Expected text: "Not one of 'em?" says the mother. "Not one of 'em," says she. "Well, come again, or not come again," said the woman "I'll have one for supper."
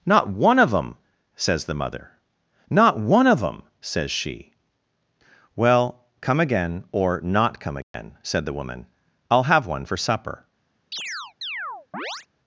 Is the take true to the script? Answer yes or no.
yes